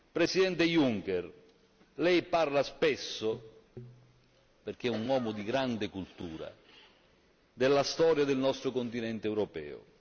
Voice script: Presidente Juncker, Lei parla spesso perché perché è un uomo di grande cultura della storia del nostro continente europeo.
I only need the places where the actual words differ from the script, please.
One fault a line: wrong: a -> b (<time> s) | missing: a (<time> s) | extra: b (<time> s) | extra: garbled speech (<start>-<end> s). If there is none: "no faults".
missing: perché (4.9 s)